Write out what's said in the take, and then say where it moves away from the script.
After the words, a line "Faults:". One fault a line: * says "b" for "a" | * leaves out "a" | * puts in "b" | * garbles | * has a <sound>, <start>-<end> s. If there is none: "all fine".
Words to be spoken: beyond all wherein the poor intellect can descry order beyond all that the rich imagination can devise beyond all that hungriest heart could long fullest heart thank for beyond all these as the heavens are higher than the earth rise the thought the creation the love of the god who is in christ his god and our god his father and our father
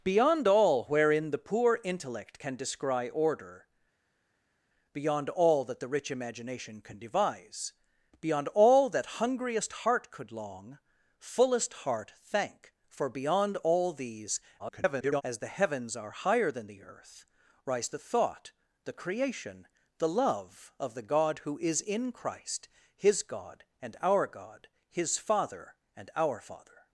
beyond all wherein the poor intellect can descry order beyond all that the rich imagination can devise beyond all that hungriest heart could long fullest heart thank for beyond all these [garbled] as the heavens are higher than the earth rise the thought the creation the love of the god who is in christ his god and our god his father and our father
Faults:
* garbles